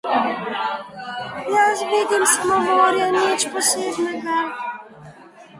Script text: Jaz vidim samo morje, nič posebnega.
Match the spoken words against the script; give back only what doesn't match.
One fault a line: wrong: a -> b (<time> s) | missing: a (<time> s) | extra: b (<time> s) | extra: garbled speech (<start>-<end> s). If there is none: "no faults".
no faults